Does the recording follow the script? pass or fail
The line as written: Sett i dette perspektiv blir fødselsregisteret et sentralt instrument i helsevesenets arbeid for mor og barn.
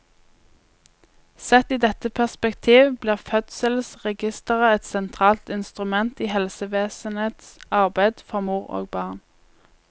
pass